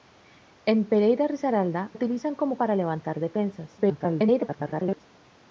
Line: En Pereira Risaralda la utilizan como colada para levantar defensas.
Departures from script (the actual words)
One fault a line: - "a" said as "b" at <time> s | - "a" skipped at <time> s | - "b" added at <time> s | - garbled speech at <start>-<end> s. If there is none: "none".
- "la" skipped at 1.9 s
- "colada" skipped at 2.6 s
- garbled speech at 3.8-5.0 s